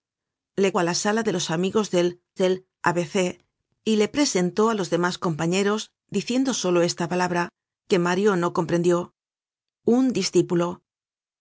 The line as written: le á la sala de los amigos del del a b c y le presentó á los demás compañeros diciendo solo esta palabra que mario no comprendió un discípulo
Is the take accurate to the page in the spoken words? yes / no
yes